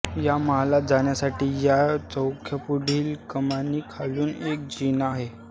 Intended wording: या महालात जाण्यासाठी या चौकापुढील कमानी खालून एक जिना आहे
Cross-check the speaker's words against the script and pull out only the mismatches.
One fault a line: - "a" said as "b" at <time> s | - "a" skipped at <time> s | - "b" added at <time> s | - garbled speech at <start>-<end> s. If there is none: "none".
none